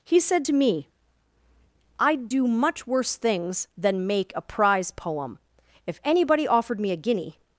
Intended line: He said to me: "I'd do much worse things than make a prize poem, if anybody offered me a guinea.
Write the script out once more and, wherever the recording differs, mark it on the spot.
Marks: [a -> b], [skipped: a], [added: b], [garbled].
He said to me: "I'd do much worse things than make a prize poem, if anybody offered me a guinea.